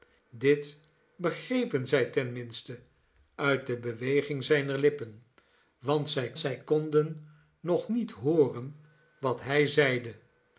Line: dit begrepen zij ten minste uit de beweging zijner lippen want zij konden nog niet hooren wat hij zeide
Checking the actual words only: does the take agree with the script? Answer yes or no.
no